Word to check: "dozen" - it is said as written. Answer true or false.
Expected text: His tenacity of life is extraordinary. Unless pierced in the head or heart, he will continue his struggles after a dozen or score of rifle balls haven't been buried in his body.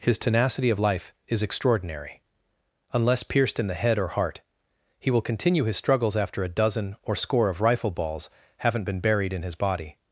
true